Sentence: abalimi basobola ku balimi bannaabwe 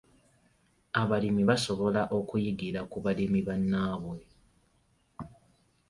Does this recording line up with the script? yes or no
no